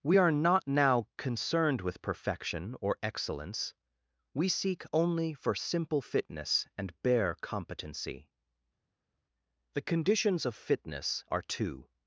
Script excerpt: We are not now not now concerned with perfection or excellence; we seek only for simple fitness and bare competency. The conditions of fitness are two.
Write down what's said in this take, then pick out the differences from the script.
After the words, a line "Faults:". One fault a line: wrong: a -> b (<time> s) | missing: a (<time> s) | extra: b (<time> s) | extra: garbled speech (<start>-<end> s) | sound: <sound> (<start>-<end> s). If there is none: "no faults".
We are not now concerned with perfection or excellence; we seek only for simple fitness and bare competency. The conditions of fitness are two.
Faults:
missing: not now (1.1 s)